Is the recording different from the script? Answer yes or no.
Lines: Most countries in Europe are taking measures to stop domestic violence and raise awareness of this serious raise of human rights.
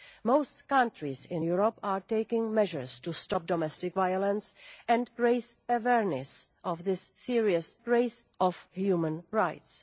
no